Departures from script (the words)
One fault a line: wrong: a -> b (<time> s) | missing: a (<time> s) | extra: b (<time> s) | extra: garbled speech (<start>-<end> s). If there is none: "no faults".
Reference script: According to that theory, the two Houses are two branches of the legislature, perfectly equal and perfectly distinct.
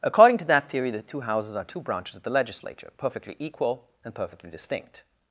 no faults